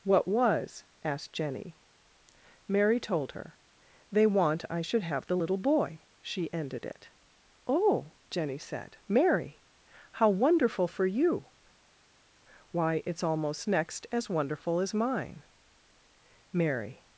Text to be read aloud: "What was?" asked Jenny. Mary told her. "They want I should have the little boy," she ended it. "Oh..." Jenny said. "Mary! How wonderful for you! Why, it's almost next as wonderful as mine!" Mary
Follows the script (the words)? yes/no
yes